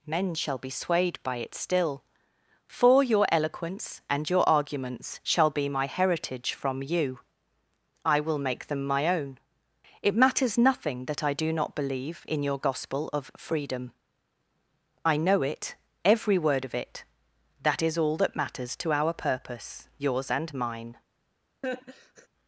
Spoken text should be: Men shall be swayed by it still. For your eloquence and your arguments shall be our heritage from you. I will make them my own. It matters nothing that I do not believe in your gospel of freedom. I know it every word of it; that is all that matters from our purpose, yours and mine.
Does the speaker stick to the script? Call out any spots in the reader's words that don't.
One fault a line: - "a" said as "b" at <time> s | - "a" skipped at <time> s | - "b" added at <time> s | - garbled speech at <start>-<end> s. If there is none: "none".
- "our" said as "my" at 5.7 s
- "from" said as "to" at 18.8 s